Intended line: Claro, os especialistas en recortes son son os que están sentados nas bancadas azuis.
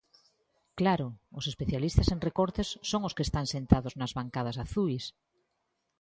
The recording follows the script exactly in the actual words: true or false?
false